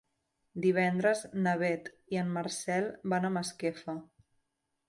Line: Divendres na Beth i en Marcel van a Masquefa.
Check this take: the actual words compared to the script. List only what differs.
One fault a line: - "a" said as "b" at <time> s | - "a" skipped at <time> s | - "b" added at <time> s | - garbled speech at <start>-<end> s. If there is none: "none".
none